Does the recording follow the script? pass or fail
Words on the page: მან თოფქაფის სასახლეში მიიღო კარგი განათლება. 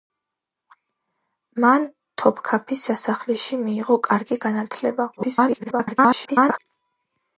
fail